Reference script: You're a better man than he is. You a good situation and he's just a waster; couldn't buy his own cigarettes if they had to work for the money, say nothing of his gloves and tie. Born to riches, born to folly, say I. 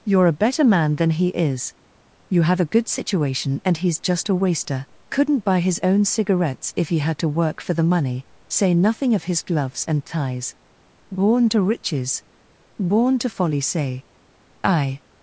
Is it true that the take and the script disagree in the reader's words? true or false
true